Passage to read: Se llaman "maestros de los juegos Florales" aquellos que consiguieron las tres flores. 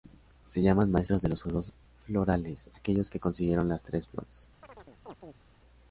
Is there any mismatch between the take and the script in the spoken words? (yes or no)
no